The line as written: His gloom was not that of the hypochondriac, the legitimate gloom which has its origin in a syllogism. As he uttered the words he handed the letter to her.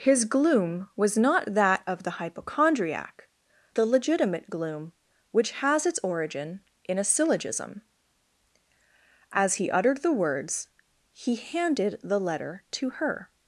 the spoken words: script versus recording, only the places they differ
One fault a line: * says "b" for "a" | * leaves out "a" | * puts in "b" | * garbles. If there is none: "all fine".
all fine